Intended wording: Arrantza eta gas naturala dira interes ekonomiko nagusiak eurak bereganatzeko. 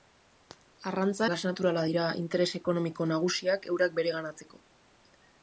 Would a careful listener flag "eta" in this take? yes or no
yes